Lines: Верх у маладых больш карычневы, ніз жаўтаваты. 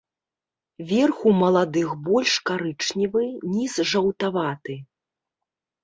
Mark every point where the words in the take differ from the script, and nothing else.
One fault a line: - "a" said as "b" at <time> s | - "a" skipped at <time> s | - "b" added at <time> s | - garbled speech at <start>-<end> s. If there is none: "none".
none